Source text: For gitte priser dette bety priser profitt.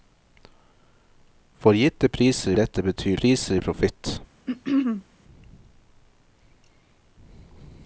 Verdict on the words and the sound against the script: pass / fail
fail